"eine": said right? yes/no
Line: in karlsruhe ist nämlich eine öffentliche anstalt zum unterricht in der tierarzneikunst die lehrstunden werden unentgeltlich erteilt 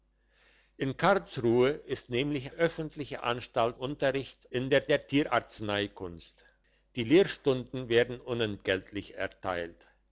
no